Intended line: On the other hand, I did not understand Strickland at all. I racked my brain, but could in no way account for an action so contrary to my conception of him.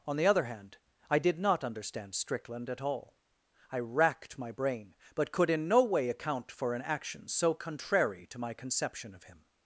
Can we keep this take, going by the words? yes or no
yes